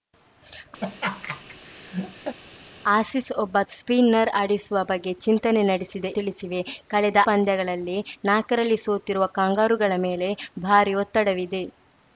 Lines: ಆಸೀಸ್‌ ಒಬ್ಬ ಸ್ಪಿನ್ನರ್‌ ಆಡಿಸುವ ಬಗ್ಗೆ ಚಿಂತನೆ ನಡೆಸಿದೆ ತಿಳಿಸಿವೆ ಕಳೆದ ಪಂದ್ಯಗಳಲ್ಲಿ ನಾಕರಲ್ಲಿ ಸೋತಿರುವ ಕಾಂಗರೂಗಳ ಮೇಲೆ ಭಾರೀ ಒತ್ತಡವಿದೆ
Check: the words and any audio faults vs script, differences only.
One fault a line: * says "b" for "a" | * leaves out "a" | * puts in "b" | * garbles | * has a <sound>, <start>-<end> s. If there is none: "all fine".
* has a laugh, 0.8-2.4 s